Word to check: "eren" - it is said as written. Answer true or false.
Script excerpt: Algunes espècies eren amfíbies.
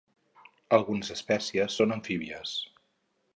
false